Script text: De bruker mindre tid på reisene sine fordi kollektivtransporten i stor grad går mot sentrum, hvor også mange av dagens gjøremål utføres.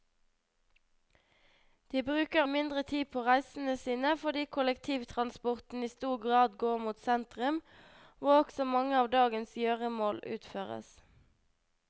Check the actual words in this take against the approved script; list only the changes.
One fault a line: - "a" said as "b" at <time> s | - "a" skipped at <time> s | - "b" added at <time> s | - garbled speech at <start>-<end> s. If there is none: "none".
none